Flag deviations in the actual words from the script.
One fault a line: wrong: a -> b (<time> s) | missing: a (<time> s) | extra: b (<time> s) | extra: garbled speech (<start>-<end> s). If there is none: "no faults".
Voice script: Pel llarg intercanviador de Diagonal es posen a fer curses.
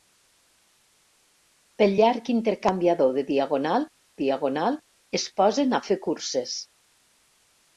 extra: Diagonal (4.2 s)